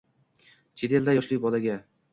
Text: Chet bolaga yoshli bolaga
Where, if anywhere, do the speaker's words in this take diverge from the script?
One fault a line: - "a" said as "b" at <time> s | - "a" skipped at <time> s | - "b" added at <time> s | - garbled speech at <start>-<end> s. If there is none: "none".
- "bolaga" said as "elda" at 1.0 s